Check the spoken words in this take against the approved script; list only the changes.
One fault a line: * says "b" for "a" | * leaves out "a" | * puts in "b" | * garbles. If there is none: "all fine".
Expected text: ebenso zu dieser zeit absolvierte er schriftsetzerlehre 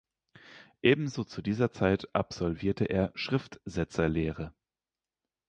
all fine